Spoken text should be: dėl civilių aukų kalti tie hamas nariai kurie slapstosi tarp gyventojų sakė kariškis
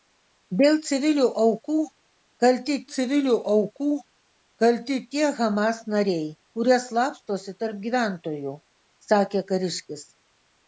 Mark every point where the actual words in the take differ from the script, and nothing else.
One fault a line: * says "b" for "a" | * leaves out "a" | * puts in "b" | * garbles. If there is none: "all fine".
* puts in "civilių aukų kalti"